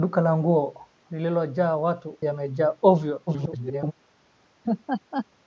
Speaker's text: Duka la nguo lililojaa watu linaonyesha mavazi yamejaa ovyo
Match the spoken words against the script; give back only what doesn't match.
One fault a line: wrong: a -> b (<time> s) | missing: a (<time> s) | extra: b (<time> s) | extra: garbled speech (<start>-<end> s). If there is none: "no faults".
missing: linaonyesha mavazi (2.2 s)
extra: garbled speech (3.3-3.9 s)